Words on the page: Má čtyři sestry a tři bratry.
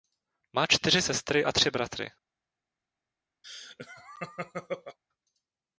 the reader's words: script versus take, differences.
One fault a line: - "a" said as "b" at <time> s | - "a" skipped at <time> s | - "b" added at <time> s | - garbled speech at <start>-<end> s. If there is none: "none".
none